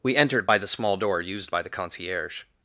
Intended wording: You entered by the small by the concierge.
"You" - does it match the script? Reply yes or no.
no